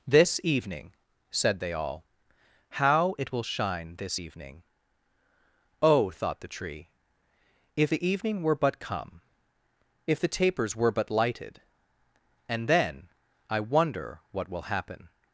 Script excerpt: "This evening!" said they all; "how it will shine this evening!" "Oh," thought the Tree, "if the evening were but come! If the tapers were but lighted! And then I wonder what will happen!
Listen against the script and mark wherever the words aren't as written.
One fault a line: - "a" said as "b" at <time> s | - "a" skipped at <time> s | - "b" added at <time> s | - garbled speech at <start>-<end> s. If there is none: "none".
none